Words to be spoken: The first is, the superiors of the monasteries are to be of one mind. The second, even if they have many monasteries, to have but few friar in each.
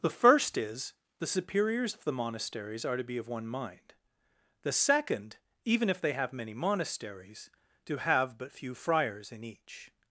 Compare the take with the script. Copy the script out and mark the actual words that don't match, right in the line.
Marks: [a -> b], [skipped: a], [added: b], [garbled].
The first is, the superiors of the monasteries are to be of one mind. The second, even if they have many monasteries, to have but few [friar -> friars] in each.